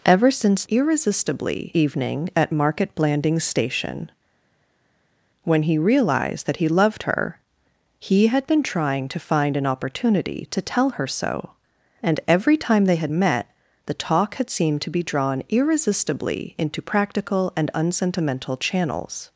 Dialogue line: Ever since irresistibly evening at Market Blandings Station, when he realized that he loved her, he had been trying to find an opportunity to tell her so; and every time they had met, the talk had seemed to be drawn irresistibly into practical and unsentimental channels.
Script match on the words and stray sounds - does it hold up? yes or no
yes